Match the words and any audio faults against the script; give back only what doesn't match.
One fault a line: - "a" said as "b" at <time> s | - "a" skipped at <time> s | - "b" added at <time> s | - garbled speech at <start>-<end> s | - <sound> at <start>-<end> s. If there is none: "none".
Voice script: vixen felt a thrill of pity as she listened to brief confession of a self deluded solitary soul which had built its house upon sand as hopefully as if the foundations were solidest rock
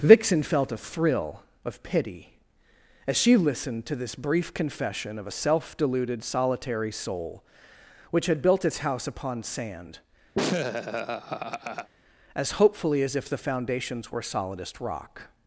- "this" added at 4.0 s
- laugh at 10.3-11.9 s